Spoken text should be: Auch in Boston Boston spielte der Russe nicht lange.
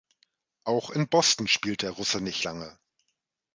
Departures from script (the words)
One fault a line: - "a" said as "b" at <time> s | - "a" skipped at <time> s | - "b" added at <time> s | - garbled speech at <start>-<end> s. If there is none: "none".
- "Boston" skipped at 1.5 s